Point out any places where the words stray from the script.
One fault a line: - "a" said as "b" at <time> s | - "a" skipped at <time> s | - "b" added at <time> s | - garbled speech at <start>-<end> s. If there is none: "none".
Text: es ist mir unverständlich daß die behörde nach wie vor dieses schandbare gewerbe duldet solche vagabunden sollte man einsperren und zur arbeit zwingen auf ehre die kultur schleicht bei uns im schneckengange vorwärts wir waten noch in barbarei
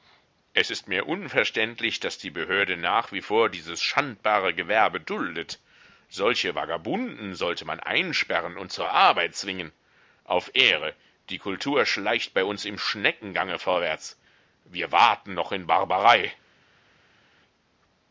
none